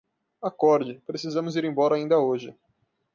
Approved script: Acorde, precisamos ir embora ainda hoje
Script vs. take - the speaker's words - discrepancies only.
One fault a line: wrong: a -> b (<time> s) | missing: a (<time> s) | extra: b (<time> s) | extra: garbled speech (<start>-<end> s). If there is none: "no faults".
no faults